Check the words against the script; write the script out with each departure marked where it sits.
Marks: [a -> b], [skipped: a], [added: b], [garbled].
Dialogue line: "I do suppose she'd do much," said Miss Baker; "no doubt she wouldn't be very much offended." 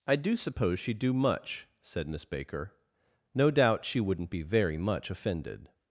"I do suppose she'd do much," said Miss Baker; "no doubt she wouldn't be very much offended."